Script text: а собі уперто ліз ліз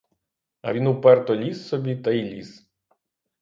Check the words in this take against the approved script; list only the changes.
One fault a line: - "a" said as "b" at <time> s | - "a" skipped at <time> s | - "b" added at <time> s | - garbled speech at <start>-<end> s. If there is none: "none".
- "собі" said as "він" at 0.7 s
- "собі та й" added at 1.7 s